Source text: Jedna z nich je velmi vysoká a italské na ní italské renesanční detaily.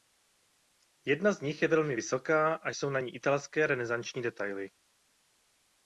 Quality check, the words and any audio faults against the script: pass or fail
fail